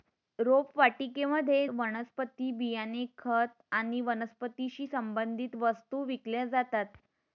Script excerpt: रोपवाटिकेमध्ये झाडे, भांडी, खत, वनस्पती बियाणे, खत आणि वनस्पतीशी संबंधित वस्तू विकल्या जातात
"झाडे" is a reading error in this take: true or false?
true